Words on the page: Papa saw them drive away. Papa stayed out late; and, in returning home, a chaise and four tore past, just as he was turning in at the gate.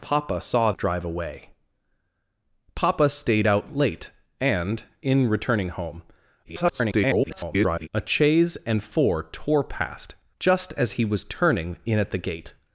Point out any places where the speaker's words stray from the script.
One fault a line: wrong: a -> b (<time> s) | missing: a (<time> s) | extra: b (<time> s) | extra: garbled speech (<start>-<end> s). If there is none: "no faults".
missing: them (0.7 s)
extra: garbled speech (6.4-7.9 s)